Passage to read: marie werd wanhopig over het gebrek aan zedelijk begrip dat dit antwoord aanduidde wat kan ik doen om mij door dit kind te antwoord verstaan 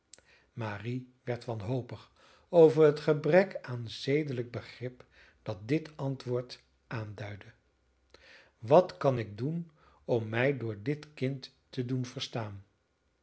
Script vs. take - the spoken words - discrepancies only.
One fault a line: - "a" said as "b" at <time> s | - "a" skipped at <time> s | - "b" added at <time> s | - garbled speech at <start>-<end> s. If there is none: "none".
- "antwoord" said as "doen" at 11.8 s